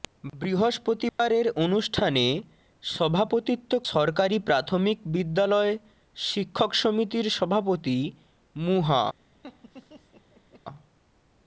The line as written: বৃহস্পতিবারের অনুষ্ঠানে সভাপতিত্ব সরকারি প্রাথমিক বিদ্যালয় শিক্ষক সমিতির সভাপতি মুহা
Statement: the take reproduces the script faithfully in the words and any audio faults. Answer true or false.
false